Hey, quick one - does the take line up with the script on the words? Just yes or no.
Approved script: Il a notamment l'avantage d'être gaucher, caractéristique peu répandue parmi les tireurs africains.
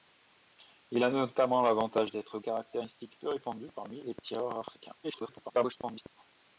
no